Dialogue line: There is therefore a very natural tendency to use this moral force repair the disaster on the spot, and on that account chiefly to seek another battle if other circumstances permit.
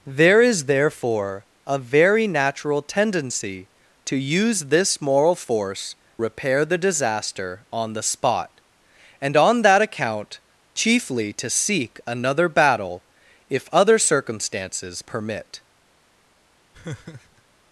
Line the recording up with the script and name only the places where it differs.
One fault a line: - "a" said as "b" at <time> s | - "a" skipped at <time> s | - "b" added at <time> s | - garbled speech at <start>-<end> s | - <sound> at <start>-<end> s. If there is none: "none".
- laugh at 16.7-17.4 s